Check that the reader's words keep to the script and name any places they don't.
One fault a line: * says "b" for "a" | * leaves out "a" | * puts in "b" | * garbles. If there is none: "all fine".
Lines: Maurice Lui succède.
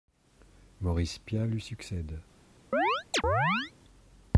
* puts in "Piat"